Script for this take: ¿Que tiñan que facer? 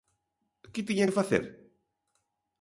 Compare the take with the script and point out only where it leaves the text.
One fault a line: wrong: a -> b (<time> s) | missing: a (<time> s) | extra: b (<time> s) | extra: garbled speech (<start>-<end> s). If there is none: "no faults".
no faults